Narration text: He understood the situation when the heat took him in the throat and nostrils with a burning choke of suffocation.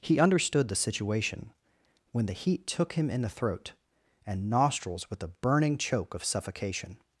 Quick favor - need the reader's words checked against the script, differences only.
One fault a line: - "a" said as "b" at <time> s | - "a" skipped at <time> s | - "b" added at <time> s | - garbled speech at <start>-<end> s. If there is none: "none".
none